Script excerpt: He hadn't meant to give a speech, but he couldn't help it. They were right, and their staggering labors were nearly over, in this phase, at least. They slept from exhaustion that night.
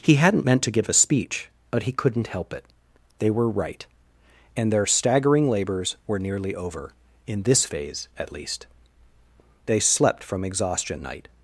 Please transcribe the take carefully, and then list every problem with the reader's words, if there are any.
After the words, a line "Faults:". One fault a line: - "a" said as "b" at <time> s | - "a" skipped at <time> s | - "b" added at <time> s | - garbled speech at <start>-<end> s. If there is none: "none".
He hadn't meant to give a speech, but he couldn't help it. They were right, and their staggering labors were nearly over, in this phase, at least. They slept from exhaustion night.
Faults:
- "that" skipped at 11.0 s